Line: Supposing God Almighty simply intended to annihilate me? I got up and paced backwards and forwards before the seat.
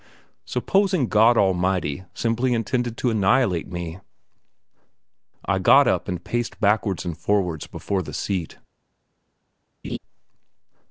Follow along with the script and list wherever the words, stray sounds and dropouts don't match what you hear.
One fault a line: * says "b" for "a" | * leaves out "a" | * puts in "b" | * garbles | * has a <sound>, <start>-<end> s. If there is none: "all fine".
* has a laugh, 9.8-10.0 s